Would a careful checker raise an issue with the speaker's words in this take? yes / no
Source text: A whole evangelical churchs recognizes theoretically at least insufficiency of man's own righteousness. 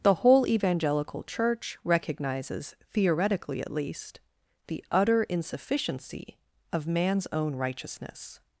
yes